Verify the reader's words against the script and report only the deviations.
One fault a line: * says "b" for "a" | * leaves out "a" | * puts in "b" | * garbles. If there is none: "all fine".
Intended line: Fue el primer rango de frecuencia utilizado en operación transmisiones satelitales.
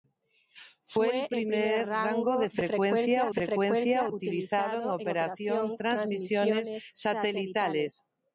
* puts in "frecuencia"